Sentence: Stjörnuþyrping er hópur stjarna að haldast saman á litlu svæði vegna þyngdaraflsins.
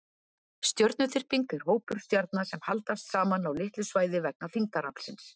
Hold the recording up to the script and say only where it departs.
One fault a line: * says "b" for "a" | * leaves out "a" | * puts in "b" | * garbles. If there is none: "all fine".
* says "sem" for "að"